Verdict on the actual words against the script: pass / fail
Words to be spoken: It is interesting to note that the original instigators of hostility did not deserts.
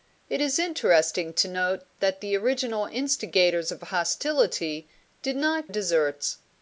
pass